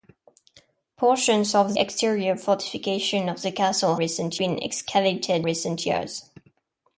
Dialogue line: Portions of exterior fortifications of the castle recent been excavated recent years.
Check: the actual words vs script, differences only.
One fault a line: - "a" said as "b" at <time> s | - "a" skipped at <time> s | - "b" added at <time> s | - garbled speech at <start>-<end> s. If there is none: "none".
none